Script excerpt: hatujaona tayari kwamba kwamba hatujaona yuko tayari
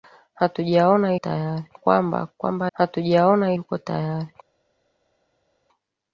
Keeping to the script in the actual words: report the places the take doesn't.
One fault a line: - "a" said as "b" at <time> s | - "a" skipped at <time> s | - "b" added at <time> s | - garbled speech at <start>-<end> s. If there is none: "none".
none